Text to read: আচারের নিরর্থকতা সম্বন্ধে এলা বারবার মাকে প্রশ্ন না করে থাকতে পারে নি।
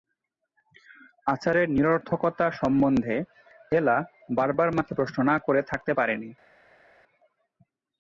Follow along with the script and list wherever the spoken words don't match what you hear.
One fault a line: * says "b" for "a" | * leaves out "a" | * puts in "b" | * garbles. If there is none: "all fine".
all fine